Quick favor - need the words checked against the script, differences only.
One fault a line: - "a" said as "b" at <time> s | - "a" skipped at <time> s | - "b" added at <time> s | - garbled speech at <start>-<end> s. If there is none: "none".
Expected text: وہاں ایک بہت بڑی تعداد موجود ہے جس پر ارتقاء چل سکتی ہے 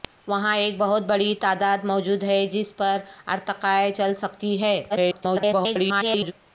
- garbled speech at 4.9-6.3 s